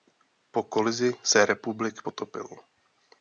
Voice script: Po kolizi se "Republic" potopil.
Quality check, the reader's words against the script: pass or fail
pass